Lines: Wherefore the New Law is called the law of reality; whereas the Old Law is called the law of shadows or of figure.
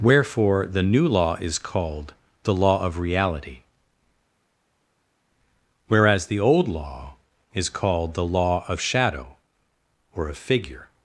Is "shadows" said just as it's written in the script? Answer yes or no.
no